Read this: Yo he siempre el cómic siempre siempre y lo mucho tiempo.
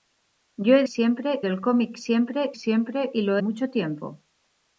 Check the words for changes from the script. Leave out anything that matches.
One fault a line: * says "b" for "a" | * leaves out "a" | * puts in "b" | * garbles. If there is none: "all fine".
all fine